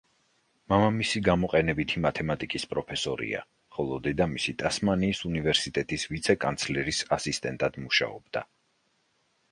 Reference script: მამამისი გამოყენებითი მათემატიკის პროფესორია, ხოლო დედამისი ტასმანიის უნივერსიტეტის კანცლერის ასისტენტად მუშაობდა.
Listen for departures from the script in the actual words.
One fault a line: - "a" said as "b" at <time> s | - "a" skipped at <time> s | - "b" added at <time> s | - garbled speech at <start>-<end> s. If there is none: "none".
- "ვიცე" added at 6.2 s